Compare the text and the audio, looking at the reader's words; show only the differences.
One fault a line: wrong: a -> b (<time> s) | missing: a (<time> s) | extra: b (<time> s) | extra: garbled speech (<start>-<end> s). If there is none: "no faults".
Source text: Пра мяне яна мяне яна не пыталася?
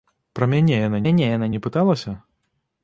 no faults